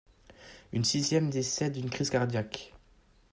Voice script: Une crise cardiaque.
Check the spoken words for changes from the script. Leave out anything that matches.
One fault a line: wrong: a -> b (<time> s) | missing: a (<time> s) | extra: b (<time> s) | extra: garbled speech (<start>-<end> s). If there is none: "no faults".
extra: sixième décède d'une (0.8 s)